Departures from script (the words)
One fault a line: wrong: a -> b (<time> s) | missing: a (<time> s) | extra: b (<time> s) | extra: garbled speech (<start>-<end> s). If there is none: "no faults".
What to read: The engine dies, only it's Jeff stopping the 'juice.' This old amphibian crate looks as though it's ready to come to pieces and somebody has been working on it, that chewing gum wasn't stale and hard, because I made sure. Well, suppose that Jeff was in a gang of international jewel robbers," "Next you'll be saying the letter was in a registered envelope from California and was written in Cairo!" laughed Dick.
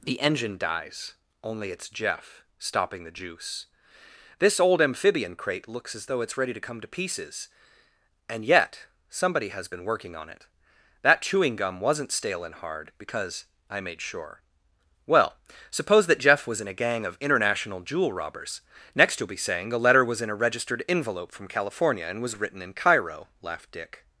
extra: yet (8.4 s)